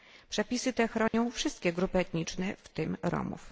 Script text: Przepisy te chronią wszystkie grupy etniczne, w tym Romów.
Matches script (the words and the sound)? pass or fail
fail